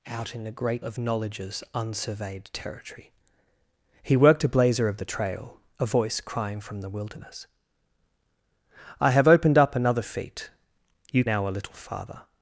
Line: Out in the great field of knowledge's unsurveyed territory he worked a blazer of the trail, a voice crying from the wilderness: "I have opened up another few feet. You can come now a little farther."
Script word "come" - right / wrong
wrong